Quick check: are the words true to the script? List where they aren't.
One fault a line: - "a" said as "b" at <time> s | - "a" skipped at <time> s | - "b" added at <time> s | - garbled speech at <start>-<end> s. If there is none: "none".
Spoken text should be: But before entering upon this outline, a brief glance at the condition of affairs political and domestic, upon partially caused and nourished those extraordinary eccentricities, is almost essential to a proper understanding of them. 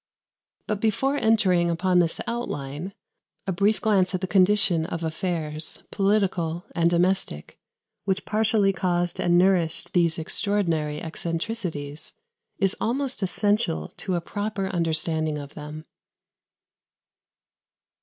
- "upon" said as "which" at 8.1 s
- "those" said as "these" at 9.9 s